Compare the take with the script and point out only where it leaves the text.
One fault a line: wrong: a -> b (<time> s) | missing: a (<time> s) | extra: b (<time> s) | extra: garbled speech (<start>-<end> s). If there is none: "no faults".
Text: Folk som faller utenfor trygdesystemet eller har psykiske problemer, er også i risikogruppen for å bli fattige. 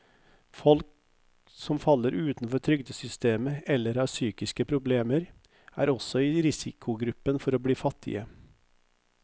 no faults